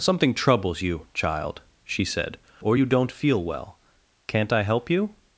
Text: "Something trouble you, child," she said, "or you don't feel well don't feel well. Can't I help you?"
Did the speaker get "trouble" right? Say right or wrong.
wrong